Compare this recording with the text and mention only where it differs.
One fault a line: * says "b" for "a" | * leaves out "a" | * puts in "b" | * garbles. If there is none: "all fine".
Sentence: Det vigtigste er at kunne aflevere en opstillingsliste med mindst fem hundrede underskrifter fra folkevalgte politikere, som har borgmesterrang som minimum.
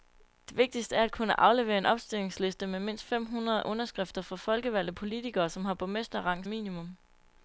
* leaves out "som"